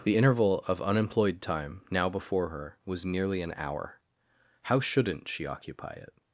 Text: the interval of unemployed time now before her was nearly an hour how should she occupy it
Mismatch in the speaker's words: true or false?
true